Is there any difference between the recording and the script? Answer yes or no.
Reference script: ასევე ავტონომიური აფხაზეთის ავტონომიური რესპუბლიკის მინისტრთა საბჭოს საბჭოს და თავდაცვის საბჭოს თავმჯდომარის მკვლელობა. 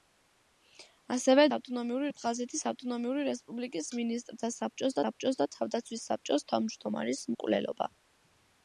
no